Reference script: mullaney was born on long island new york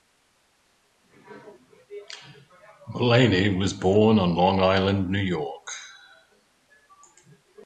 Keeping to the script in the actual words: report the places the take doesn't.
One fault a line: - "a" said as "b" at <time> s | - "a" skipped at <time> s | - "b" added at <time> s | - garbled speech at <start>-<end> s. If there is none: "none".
none